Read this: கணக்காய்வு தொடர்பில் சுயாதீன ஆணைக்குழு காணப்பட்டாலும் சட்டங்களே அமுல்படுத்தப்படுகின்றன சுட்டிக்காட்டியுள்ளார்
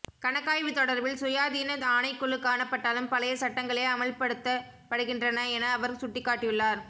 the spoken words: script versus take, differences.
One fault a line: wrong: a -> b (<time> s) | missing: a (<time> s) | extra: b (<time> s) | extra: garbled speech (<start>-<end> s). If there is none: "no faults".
extra: பழைய (3.1 s)
extra: என அவர் (5.5 s)